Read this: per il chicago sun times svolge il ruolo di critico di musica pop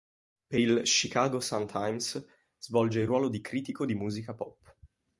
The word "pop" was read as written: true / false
true